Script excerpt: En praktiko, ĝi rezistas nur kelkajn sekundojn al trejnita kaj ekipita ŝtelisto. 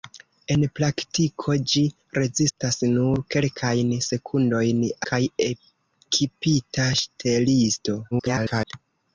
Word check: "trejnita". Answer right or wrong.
wrong